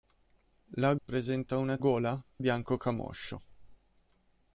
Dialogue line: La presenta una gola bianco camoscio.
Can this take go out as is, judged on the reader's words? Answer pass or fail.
pass